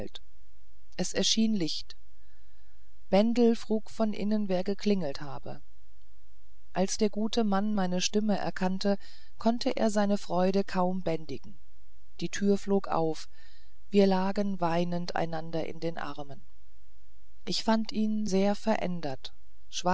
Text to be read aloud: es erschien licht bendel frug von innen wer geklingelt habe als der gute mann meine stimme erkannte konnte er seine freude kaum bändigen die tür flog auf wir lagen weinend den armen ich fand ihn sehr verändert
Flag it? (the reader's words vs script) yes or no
yes